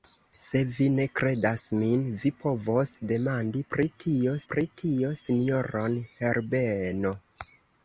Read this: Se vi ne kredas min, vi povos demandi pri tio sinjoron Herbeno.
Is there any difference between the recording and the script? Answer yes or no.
yes